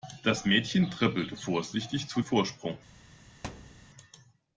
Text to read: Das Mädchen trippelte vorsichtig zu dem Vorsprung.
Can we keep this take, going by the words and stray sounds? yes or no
no